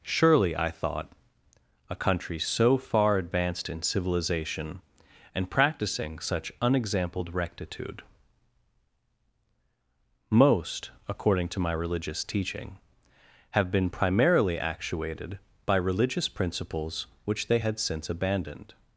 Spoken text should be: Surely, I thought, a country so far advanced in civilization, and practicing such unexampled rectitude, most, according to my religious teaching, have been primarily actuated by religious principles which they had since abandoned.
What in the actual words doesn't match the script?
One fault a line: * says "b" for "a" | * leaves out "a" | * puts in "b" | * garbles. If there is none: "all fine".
all fine